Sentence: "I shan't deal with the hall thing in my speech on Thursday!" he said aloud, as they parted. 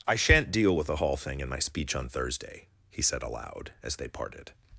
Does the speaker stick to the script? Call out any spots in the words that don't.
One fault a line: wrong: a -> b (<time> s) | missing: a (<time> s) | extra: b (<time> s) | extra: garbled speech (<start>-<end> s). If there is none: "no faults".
no faults